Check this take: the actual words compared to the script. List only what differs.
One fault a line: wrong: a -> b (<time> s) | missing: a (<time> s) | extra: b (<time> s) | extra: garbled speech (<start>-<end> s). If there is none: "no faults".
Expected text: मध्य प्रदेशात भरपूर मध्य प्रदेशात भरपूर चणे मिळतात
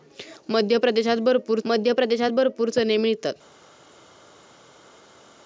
no faults